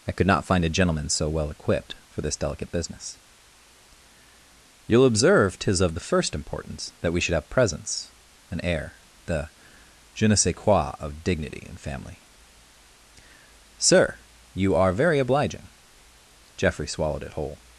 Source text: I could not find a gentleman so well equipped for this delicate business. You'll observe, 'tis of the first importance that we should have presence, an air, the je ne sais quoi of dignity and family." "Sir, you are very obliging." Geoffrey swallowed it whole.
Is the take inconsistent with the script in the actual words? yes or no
no